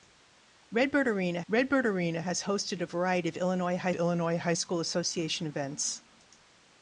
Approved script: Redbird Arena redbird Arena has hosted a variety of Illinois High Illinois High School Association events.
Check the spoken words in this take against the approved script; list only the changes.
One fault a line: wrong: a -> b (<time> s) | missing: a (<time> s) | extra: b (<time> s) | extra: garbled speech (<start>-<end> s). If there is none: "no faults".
no faults